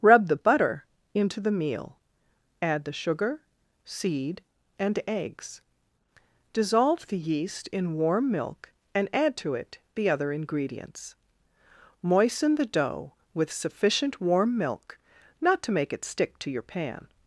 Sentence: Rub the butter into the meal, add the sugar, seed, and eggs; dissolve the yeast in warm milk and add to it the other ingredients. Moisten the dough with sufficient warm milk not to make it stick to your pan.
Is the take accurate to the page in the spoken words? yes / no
yes